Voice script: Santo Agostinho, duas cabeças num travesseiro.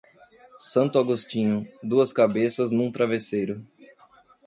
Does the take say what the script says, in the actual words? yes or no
yes